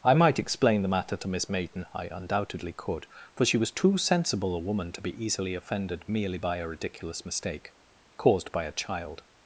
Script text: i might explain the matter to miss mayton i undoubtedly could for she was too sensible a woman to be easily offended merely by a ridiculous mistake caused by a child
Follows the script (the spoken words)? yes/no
yes